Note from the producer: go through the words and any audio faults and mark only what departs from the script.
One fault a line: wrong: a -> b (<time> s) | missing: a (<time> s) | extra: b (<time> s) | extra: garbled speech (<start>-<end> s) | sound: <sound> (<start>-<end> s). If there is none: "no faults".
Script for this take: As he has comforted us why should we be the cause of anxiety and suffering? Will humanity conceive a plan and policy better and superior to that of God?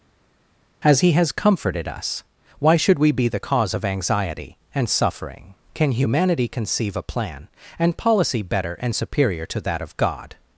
wrong: Will -> Can (5.7 s)